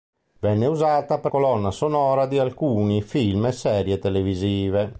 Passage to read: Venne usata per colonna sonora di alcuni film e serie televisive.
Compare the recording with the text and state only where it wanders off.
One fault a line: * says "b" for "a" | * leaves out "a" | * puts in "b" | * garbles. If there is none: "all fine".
all fine